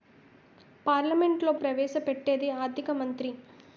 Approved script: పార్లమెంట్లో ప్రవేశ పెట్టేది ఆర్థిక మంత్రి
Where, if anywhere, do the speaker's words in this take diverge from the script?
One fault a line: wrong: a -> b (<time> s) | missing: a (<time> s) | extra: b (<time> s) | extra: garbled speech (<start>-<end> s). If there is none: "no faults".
no faults